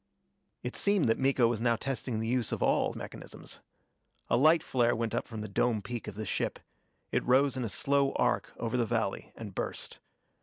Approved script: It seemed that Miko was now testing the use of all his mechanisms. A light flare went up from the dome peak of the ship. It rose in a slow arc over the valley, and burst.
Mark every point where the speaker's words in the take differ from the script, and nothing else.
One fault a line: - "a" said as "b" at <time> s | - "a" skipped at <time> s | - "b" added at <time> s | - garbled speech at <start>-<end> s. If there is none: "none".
- "his" skipped at 2.9 s